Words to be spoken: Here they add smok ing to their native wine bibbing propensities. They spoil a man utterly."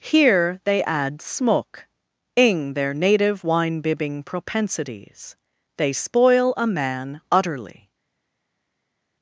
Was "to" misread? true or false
true